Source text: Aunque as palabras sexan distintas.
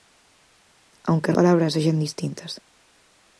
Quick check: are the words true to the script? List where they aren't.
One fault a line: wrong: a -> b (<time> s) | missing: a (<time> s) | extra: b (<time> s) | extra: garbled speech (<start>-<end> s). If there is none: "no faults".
no faults